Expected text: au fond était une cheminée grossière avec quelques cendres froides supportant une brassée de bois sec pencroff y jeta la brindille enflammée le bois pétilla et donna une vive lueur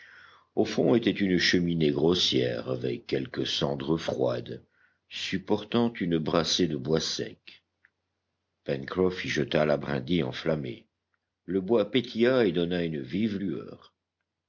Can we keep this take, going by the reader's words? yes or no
yes